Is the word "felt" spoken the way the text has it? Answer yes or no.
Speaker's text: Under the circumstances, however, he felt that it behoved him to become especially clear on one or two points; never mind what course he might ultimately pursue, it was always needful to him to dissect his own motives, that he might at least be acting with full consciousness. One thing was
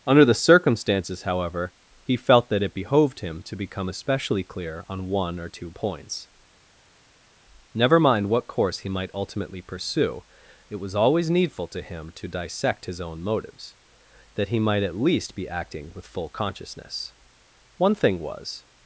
yes